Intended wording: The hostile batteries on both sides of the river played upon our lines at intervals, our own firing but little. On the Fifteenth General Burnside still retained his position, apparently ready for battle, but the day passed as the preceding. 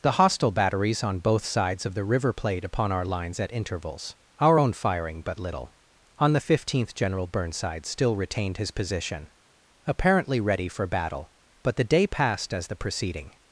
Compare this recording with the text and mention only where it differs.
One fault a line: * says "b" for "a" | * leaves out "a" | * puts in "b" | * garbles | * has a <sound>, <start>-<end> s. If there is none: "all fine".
all fine